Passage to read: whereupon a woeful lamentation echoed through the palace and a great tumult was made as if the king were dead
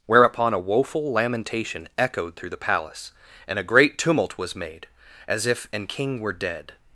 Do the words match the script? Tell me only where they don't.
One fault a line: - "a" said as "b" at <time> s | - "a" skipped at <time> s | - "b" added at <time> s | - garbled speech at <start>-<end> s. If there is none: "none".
- "the" said as "an" at 5.7 s